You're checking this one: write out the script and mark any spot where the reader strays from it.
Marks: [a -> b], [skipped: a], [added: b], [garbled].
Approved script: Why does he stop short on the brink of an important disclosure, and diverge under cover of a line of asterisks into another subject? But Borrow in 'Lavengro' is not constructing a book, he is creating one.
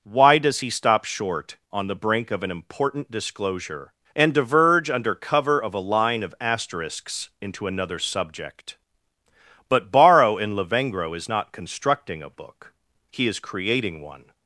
Why does he stop short on the brink of an important disclosure, and diverge under cover of a line of asterisks into another subject? But Borrow in 'Lavengro' is not constructing a book, he is creating one.